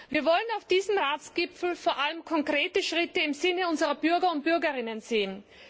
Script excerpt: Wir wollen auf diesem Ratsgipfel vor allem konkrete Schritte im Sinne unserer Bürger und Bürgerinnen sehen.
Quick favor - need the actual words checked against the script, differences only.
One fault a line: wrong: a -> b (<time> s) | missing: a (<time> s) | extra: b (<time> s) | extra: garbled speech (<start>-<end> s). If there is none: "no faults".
no faults